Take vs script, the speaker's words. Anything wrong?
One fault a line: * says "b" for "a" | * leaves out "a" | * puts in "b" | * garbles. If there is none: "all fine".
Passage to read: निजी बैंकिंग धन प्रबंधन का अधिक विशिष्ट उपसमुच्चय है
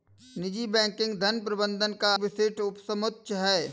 * leaves out "अधिक"